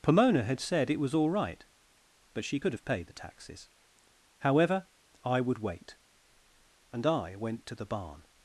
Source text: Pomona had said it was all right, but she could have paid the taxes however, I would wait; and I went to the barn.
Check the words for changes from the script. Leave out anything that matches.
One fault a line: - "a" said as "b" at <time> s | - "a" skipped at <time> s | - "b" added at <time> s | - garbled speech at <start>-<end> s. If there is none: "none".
none